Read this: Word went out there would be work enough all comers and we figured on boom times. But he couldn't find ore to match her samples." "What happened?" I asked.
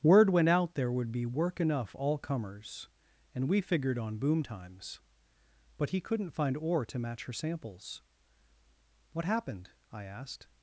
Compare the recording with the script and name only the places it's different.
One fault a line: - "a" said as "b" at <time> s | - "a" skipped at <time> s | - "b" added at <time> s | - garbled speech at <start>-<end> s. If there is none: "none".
none